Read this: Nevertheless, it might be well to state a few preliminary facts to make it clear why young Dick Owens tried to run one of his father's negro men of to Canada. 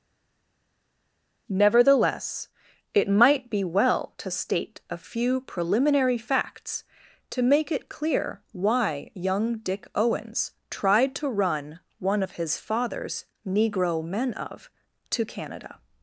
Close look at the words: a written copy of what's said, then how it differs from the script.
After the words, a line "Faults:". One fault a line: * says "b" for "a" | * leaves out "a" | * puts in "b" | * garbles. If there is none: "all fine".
Nevertheless, it might be well to state a few preliminary facts to make it clear why young Dick Owens tried to run one of his father's negro men of to Canada.
Faults:
all fine